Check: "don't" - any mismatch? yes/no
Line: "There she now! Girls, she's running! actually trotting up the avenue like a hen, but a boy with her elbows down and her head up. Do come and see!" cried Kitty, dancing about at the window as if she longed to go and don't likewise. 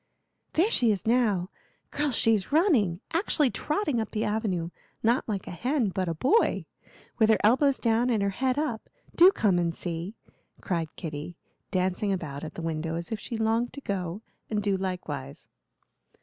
yes